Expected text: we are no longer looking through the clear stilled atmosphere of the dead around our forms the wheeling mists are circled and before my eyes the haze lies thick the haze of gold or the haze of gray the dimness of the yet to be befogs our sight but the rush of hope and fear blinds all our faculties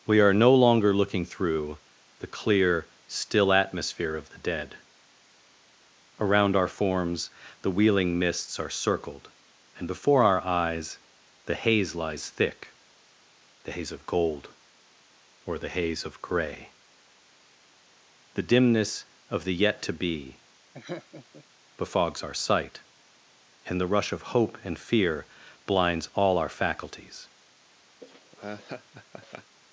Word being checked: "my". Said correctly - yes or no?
no